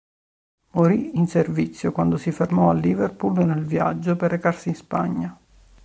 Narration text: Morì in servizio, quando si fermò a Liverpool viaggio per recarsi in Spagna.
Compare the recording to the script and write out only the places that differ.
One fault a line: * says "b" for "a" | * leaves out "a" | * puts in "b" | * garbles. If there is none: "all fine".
* puts in "nel"